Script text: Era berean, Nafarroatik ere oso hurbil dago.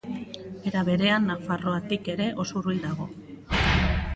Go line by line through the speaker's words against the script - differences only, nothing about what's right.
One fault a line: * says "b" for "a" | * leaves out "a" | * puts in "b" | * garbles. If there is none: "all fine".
all fine